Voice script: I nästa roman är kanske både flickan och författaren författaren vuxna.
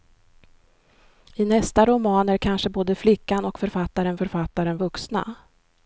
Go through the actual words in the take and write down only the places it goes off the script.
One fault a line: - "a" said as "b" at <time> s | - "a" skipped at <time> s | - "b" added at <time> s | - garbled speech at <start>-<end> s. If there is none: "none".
none